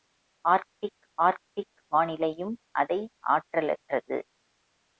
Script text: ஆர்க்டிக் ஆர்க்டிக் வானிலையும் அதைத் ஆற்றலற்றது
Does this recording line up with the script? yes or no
yes